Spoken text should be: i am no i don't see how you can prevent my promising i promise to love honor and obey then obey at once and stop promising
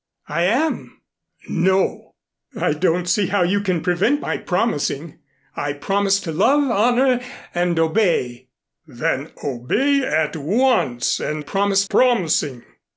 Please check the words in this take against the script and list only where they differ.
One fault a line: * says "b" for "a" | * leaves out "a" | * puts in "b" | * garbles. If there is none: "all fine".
* says "promise" for "stop"